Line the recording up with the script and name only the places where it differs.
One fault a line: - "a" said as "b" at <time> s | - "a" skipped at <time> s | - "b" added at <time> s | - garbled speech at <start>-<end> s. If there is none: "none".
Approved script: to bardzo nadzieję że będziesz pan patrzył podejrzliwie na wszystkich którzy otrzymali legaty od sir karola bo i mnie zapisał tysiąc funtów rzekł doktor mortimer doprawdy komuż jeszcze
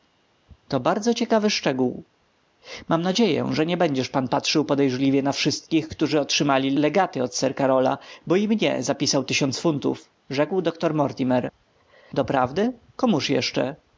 - "ciekawy szczegół mam" added at 1.1 s
- "nie" added at 3.6 s